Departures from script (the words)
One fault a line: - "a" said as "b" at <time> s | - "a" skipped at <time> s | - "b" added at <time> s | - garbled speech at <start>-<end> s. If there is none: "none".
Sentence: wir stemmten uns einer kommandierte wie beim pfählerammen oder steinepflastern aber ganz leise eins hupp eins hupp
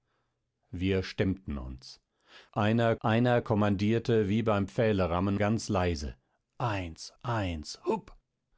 - "einer" added at 3.0 s
- "oder steinepflastern aber" skipped at 5.4 s
- "hupp" skipped at 7.1 s